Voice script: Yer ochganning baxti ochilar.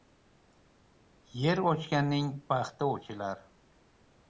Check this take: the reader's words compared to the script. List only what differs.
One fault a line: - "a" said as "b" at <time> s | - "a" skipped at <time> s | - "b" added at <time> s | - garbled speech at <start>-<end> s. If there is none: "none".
none